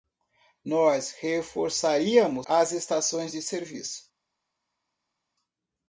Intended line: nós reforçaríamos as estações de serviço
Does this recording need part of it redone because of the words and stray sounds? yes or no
no